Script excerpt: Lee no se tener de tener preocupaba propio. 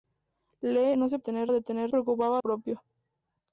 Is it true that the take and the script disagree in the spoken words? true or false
false